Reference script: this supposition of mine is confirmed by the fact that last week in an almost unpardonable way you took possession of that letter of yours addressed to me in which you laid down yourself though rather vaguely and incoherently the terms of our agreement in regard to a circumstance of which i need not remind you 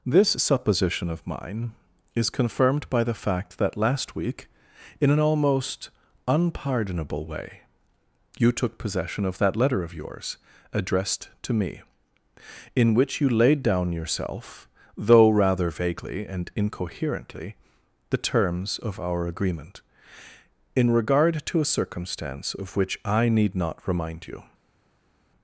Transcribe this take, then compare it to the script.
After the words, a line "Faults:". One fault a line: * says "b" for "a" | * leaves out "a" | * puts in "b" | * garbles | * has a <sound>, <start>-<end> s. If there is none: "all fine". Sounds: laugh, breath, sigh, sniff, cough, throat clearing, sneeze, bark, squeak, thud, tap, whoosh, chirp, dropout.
this supposition of mine is confirmed by the fact that last week in an almost unpardonable way you took possession of that letter of yours addressed to me in which you laid down yourself though rather vaguely and incoherently the terms of our agreement in regard to a circumstance of which i need not remind you
Faults:
all fine